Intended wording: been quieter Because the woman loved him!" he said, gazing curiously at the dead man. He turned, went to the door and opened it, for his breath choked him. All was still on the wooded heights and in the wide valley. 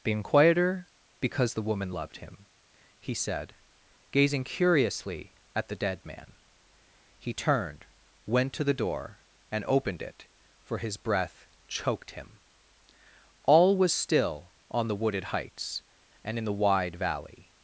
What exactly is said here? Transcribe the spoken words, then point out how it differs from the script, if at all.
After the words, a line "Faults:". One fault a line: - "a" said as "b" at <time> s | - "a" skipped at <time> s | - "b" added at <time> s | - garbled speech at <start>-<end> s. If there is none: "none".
been quieter Because the woman loved him!" he said, gazing curiously at the dead man. He turned, went to the door and opened it, for his breath choked him. All was still on the wooded heights and in the wide valley.
Faults:
none